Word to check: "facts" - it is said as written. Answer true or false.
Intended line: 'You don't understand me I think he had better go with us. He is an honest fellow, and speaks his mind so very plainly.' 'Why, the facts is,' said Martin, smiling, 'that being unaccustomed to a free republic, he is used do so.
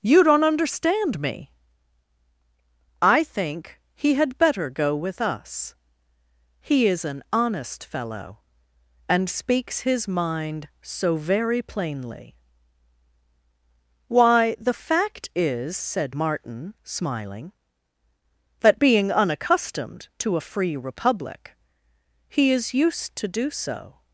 false